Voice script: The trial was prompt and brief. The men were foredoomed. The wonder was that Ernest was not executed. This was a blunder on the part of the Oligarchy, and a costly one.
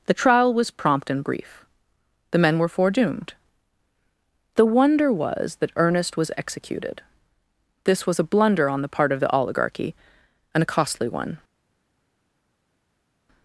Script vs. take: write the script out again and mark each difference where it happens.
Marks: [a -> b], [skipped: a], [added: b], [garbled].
The trial was prompt and brief. The men were foredoomed. The wonder was that Ernest was [skipped: not] executed. This was a blunder on the part of the Oligarchy, and a costly one.